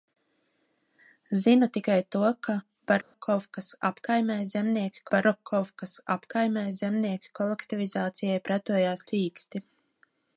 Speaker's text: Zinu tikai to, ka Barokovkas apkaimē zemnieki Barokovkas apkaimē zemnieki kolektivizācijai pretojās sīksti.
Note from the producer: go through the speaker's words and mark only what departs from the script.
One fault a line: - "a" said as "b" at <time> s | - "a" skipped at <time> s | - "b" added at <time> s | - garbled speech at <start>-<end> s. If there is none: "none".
none